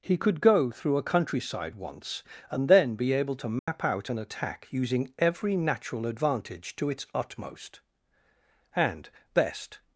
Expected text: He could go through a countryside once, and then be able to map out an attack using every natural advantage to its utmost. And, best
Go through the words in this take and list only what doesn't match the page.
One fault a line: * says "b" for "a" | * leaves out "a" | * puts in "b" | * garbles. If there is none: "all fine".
all fine